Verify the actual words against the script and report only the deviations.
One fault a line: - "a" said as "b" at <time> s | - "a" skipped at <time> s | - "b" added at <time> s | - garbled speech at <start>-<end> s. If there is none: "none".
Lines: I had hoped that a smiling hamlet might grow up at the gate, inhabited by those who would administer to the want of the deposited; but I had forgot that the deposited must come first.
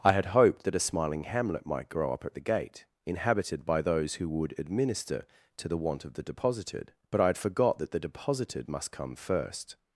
none